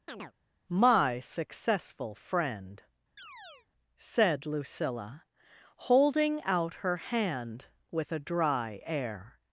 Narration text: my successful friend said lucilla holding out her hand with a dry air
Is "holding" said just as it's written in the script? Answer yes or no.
yes